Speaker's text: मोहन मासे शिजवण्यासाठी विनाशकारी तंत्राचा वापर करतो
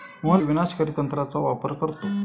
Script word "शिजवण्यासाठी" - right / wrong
wrong